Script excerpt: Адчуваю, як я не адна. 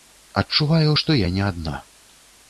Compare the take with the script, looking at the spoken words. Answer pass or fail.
fail